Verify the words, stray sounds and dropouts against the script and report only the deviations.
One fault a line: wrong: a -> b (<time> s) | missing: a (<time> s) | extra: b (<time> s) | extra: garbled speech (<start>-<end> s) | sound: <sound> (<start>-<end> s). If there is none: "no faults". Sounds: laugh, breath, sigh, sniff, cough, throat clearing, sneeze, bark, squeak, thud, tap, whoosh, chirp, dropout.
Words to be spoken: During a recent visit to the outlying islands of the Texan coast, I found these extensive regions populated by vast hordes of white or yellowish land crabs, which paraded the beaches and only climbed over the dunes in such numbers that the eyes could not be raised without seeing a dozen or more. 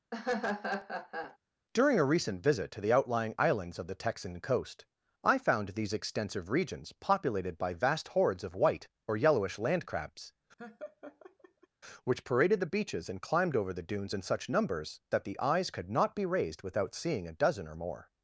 sound: laugh (0.1-1.4 s)
sound: laugh (10.6-11.7 s)
missing: only (13.2 s)